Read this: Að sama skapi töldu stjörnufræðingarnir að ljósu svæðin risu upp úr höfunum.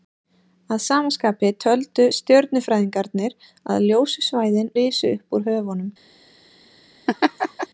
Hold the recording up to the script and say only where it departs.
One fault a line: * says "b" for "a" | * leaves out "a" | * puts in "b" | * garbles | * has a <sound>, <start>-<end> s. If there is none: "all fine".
* has a laugh, 7.1-7.7 s